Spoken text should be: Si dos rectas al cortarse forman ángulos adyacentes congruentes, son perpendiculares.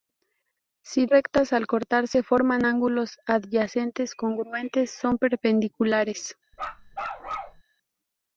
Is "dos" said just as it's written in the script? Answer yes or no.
no